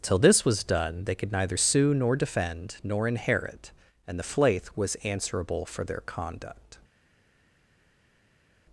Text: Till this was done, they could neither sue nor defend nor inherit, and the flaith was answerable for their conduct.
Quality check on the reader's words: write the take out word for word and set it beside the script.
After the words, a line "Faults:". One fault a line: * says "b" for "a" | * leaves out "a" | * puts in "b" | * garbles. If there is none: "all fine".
Till this was done, they could neither sue nor defend nor inherit, and the flaith was answerable for their conduct.
Faults:
all fine